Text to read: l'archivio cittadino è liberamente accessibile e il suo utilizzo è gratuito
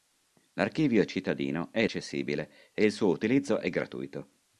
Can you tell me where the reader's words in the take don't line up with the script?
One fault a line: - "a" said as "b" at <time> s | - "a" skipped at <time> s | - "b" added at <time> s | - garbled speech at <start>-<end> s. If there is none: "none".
- "liberamente" skipped at 1.9 s